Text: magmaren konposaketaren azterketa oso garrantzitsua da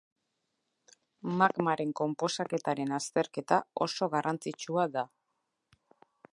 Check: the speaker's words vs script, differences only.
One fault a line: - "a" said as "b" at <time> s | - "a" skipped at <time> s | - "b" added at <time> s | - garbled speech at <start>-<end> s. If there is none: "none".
none